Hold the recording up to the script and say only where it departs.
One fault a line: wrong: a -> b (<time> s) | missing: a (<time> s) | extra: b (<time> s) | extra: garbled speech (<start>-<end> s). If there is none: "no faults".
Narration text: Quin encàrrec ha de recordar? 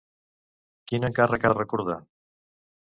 no faults